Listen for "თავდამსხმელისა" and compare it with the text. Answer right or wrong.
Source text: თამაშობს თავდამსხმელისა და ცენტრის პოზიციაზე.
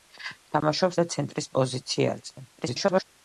wrong